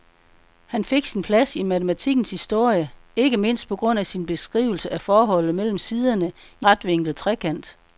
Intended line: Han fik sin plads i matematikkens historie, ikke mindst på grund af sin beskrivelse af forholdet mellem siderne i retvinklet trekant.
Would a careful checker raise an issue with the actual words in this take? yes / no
no